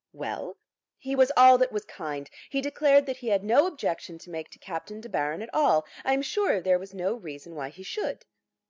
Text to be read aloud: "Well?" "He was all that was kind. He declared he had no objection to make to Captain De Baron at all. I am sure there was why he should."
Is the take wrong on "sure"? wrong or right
right